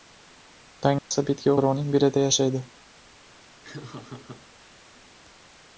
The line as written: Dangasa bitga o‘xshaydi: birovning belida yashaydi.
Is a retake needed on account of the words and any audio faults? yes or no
yes